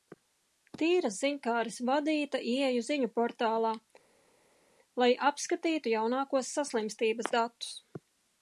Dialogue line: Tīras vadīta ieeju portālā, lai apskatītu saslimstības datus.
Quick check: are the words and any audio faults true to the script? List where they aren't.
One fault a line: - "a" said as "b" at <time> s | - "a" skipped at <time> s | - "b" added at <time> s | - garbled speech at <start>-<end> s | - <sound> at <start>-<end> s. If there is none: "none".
- "ziņkāres" added at 1.2 s
- "ziņu" added at 2.9 s
- "jaunākos" added at 6.0 s